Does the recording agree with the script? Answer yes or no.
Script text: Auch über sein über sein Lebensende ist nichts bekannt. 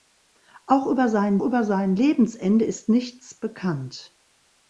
yes